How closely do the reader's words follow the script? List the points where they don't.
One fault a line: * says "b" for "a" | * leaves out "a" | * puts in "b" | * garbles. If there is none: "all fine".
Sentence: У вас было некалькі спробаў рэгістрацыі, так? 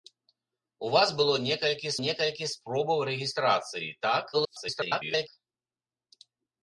* puts in "некалькі"
* garbles